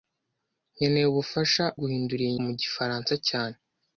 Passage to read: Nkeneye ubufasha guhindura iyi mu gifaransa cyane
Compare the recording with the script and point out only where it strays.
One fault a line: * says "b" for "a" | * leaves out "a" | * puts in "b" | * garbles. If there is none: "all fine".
all fine